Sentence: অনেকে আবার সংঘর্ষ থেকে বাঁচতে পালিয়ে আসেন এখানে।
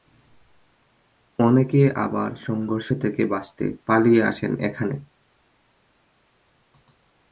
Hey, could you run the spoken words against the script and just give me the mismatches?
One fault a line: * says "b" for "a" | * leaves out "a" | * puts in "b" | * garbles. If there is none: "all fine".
all fine